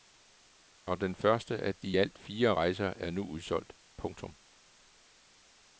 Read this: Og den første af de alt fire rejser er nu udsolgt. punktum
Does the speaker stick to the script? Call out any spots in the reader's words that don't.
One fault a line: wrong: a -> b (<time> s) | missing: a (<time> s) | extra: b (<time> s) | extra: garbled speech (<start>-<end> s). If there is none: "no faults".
no faults